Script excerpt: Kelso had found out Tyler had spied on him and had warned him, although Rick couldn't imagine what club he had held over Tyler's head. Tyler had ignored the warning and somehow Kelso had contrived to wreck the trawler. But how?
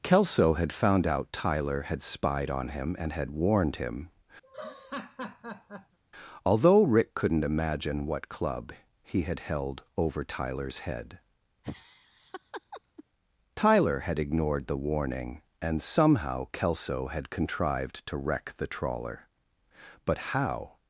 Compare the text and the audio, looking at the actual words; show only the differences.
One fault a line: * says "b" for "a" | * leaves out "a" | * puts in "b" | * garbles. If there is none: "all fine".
all fine